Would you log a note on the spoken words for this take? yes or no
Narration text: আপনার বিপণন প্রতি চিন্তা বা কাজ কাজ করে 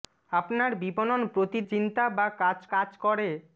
no